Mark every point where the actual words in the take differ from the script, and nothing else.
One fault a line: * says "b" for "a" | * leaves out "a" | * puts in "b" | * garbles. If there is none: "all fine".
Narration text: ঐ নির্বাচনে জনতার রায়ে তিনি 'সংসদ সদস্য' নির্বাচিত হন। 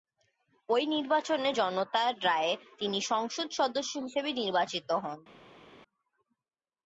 * puts in "হিসেবে"